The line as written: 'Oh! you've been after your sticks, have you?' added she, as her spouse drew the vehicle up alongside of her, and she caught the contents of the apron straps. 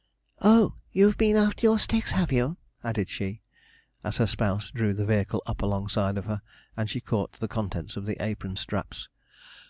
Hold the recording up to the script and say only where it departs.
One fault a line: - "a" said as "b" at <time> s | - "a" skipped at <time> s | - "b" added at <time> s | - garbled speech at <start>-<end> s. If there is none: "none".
none